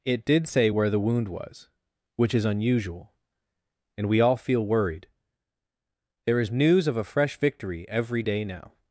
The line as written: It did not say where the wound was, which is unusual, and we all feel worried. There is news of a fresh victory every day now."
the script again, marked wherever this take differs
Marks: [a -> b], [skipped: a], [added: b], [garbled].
It did [skipped: not] say where the wound was, which is unusual, and we all feel worried. There is news of a fresh victory every day now."